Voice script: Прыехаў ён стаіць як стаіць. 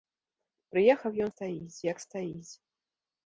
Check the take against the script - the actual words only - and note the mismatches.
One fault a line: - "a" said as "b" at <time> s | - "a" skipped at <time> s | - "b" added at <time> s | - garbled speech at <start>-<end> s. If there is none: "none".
none